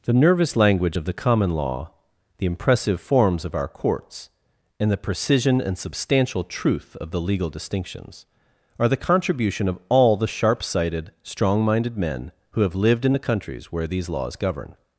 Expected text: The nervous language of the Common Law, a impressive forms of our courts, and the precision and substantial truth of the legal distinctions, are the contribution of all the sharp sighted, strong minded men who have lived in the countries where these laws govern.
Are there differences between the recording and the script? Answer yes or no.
yes